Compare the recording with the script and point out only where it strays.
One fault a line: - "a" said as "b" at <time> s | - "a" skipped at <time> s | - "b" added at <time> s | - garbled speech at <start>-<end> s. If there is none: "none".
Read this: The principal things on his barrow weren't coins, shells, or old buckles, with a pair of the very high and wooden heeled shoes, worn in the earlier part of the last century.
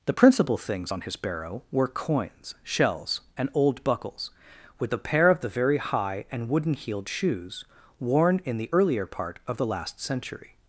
- "weren't" said as "were" at 1.7 s
- "or" said as "and" at 3.4 s